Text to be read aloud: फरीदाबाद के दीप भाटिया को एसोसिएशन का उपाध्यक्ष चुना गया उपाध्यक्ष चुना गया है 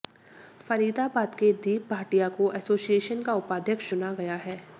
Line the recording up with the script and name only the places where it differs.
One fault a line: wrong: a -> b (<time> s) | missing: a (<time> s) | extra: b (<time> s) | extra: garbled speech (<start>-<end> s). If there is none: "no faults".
missing: उपाध्यक्ष चुना गया (4.3 s)